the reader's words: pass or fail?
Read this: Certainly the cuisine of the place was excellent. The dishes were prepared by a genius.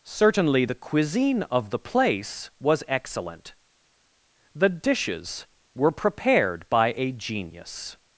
pass